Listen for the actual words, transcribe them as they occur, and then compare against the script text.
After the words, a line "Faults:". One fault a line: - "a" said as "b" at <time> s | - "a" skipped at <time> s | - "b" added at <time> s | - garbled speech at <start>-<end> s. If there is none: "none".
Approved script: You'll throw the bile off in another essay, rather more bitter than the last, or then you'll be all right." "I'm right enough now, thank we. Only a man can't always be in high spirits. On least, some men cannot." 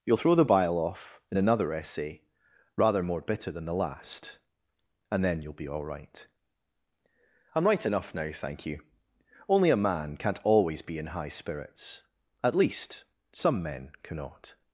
You'll throw the bile off in another essay, rather more bitter than the last, and then you'll be all right." "I'm right enough now, thank you. Only a man can't always be in high spirits. At least, some men cannot."
Faults:
- "or" said as "and" at 5.1 s
- "we" said as "you" at 8.7 s
- "On" said as "At" at 12.4 s